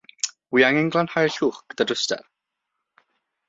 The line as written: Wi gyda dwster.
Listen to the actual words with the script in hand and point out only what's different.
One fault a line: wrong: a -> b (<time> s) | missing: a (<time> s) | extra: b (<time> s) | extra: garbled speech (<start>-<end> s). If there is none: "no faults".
extra: angen glanhau'r llwch (0.7 s)